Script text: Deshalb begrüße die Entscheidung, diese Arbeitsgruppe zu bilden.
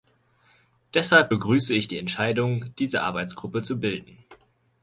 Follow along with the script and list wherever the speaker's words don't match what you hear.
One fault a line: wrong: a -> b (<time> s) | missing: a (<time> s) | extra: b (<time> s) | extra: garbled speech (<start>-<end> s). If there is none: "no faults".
extra: ich (1.7 s)